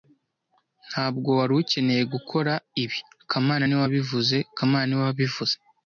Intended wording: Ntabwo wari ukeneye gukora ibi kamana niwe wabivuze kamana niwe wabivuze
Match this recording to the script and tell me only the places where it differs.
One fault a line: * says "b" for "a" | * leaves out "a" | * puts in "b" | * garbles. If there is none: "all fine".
all fine